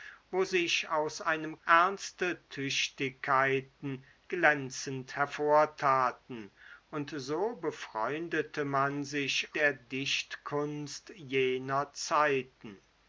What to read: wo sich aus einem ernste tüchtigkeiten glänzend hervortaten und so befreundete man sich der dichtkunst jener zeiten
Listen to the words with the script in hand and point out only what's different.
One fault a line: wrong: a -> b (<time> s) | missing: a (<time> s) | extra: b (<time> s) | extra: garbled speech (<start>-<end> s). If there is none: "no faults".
no faults